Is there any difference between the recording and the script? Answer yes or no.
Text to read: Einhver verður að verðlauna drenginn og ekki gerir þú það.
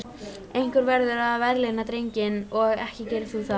no